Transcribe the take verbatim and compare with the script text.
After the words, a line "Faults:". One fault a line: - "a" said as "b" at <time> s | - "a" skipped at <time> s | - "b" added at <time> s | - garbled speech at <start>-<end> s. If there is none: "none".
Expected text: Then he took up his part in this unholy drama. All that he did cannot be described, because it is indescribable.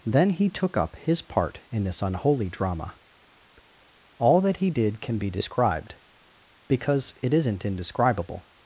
Then he took up his part in this unholy drama. All that he did can be described, because it isn't indescribable.
Faults:
- "cannot" said as "can" at 5.0 s
- "is" said as "isn't" at 7.3 s